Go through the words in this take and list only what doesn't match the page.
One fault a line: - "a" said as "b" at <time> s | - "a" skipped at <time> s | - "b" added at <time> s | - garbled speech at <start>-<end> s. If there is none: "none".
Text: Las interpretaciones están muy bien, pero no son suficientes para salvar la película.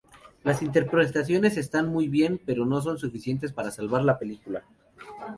none